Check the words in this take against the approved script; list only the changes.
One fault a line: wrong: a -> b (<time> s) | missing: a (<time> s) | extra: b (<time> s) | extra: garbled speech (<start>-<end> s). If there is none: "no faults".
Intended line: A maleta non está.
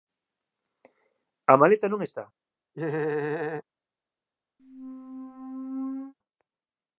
no faults